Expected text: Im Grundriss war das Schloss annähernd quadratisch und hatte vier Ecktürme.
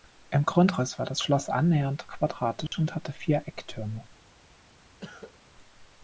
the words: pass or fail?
pass